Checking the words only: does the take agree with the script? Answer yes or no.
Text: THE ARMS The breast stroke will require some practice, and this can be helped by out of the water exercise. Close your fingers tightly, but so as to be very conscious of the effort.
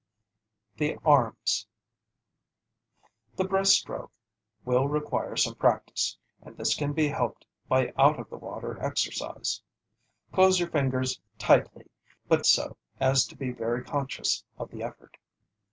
yes